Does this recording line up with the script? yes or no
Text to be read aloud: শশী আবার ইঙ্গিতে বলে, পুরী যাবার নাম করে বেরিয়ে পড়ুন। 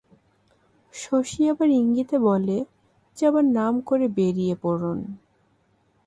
no